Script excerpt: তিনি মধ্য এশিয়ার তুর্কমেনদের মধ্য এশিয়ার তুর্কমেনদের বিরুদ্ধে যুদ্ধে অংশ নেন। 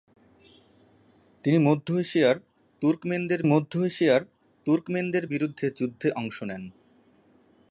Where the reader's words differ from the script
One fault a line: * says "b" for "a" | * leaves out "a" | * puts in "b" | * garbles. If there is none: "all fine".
all fine